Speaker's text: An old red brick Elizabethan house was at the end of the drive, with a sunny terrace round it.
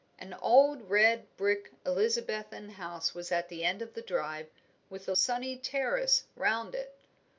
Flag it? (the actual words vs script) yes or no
no